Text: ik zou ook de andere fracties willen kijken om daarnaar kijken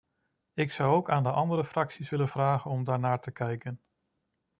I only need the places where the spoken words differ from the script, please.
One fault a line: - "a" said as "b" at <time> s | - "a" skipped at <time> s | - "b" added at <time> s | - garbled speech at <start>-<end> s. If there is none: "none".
- "aan" added at 1.1 s
- "kijken" said as "vragen" at 2.3 s
- "te" added at 3.2 s